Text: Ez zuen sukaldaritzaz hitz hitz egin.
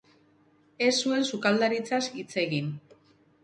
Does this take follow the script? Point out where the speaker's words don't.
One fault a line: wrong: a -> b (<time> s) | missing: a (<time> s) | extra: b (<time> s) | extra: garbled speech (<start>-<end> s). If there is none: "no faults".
missing: hitz (2.3 s)